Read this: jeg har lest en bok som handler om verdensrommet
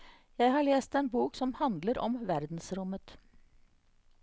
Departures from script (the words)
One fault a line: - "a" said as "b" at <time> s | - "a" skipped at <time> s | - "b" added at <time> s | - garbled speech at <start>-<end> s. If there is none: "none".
none